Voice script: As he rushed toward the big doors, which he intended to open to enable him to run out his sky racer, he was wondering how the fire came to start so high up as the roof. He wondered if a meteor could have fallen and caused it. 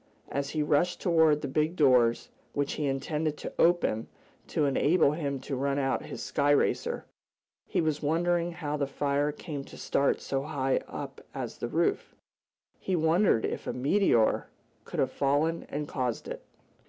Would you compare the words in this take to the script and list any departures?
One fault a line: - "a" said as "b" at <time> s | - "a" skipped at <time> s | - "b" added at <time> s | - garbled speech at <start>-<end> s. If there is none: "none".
none